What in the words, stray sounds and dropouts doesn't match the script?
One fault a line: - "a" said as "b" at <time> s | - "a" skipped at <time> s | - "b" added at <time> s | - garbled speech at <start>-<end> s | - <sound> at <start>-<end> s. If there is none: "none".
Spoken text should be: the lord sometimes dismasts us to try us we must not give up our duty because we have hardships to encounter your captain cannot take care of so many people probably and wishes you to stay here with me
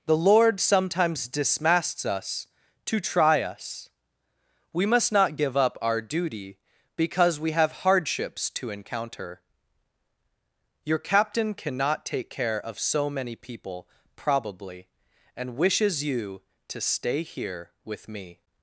none